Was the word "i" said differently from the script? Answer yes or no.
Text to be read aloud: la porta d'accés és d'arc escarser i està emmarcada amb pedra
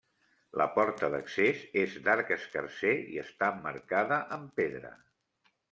no